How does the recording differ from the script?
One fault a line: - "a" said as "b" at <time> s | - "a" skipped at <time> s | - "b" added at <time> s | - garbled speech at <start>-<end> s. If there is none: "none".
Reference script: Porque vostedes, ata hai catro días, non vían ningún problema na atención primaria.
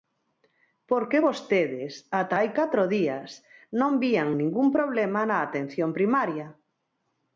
none